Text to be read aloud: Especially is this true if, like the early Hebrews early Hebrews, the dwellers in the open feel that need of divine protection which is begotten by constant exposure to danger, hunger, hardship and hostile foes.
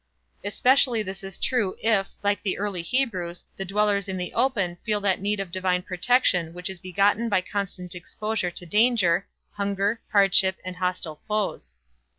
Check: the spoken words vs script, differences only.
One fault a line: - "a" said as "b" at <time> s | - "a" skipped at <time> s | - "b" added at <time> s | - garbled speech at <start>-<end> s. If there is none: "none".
- "early Hebrews" skipped at 3.5 s